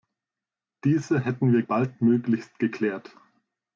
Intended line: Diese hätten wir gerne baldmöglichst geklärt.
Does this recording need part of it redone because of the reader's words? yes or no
yes